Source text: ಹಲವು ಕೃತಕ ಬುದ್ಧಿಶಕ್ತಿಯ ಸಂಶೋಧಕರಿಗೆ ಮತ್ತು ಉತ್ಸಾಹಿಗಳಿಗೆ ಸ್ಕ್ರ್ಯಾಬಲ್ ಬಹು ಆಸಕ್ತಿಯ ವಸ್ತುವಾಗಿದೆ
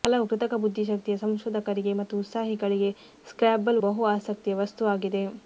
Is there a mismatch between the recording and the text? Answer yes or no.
no